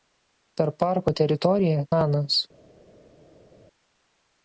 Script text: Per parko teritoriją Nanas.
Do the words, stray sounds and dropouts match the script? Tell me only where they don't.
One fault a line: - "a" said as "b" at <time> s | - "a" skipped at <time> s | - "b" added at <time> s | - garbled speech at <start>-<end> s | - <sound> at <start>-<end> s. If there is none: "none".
none